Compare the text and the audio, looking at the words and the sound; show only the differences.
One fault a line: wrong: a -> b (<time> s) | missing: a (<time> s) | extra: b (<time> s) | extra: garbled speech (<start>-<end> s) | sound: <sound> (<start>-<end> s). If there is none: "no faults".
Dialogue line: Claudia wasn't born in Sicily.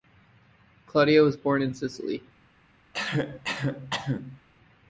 wrong: wasn't -> was (1.2 s)
sound: cough (2.9-4.4 s)